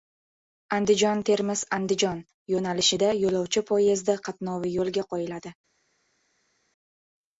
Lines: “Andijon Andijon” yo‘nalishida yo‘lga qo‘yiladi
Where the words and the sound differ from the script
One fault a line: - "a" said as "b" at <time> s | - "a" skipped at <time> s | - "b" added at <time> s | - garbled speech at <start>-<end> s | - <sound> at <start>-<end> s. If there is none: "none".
- "Termiz" added at 1.3 s
- "yo‘lovchi poyezdi qatnovi" added at 3.2 s